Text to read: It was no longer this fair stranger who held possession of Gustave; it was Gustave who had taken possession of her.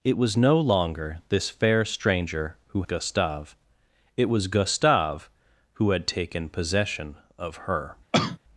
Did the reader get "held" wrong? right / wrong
wrong